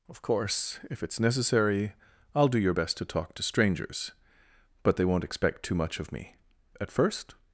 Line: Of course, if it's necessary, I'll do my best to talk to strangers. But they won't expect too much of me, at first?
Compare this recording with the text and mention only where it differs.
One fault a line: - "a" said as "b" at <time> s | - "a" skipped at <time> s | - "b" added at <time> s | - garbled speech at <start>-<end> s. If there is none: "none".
- "my" said as "your" at 2.6 s